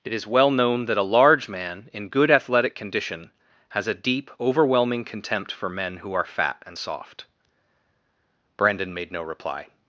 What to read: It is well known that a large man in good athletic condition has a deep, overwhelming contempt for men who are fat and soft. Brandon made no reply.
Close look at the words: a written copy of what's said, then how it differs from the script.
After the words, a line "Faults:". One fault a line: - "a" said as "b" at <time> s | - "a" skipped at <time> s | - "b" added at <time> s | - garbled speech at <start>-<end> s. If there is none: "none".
It is well known that a large man in good athletic condition has a deep, overwhelming contempt for men who are fat and soft. Brandon made no reply.
Faults:
none